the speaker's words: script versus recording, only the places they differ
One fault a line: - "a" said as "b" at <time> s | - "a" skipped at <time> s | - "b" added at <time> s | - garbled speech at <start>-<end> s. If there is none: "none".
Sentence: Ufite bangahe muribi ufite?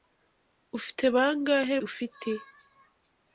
- "muribi" skipped at 1.8 s